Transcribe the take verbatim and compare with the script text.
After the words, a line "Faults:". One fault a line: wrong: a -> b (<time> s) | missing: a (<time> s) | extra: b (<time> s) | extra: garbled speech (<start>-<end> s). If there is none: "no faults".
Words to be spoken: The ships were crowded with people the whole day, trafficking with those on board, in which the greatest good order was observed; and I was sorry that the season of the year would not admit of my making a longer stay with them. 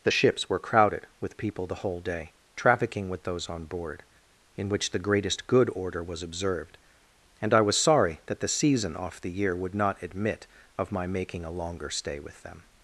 The ships were crowded with people the whole day, trafficking with those on board, in which the greatest good order was observed; and I was sorry that the season off the year would not admit of my making a longer stay with them.
Faults:
wrong: of -> off (9.0 s)